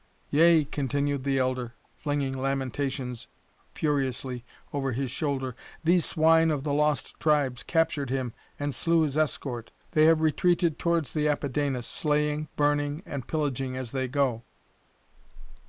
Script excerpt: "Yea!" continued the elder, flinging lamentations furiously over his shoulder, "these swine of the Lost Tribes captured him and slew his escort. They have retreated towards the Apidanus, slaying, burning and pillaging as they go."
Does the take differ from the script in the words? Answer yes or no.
no